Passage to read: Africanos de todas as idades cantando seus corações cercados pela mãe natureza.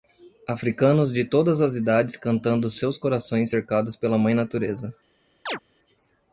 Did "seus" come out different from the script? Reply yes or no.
no